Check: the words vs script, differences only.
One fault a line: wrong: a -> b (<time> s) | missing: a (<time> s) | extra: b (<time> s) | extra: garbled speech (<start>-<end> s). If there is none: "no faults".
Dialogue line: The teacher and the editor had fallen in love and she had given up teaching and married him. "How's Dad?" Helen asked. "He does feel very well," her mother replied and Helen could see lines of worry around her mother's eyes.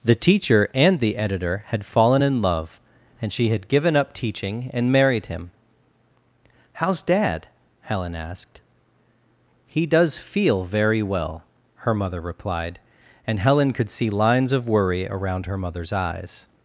no faults